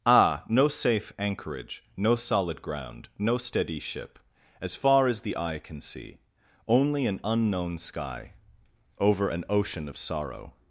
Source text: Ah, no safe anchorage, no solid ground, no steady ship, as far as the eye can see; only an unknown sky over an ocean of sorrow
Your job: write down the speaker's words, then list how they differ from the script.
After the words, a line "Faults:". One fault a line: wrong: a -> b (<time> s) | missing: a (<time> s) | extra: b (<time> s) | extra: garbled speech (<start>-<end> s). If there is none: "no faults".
Ah, no safe anchorage, no solid ground, no steady ship, as far as the eye can see; only an unknown sky over an ocean of sorrow
Faults:
no faults